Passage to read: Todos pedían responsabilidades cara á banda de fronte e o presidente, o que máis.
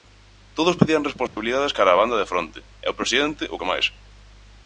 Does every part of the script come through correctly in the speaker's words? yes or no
yes